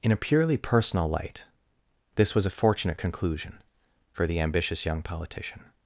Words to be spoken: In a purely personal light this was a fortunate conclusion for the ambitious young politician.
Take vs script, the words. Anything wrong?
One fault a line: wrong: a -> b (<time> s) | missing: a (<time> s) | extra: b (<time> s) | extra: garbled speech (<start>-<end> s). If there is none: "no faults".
no faults